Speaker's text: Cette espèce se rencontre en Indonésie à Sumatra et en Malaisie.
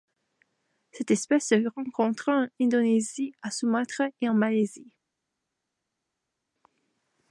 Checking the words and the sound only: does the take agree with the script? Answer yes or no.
yes